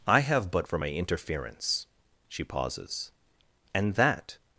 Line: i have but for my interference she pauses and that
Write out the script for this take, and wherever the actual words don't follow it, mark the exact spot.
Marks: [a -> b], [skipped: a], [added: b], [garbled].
i have but for my interference she pauses and that